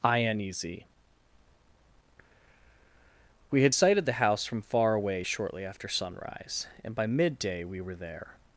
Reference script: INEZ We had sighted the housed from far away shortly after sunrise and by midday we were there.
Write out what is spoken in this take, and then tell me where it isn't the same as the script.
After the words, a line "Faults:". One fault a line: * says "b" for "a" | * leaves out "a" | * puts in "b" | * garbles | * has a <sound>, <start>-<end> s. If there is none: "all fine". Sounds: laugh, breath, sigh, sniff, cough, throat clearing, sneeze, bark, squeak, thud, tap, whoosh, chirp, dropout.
INEZ We had sighted the house from far away shortly after sunrise and by midday we were there.
Faults:
* says "house" for "housed"